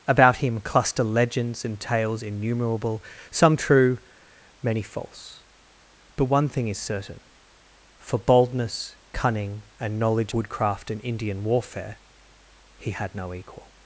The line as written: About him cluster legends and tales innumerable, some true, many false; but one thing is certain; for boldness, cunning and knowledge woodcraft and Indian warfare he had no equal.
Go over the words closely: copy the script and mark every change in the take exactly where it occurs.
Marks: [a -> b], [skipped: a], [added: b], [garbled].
About him cluster legends and tales innumerable, some true, many false; but one thing is certain; for boldness, cunning and knowledge woodcraft and Indian warfare he had no equal.